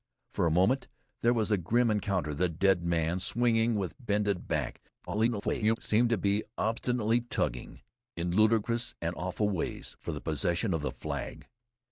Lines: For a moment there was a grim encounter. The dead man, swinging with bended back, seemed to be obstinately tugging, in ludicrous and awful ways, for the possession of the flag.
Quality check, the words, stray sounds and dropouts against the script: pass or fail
fail